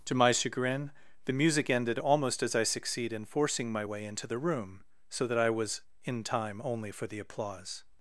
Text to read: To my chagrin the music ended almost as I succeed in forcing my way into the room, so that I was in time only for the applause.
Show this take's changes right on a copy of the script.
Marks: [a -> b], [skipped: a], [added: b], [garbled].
To my chagrin the music ended almost as I succeed in forcing my way into the room, so that I was in time only for the applause.